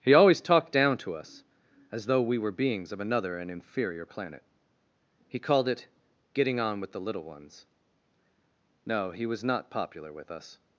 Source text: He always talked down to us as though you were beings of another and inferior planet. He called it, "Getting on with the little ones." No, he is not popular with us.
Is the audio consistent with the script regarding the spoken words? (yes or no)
no